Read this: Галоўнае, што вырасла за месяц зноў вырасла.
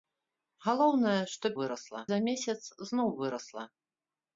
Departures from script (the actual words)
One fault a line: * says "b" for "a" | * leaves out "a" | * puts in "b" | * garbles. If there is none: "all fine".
all fine